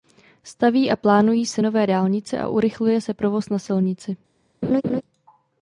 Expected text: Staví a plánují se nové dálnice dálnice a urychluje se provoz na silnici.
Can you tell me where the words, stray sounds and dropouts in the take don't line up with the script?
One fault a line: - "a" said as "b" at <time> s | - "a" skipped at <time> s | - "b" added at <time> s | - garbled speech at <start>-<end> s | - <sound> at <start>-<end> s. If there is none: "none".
- "dálnice" skipped at 2.4 s
- laugh at 4.6-5.0 s